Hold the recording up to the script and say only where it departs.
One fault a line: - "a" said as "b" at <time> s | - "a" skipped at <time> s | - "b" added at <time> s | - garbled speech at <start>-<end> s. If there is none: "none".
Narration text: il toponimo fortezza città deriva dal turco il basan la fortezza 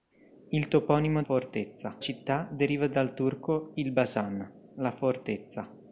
none